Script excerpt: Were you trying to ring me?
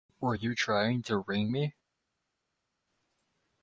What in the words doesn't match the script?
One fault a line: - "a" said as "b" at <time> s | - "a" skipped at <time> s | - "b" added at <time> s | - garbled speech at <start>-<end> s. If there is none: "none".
none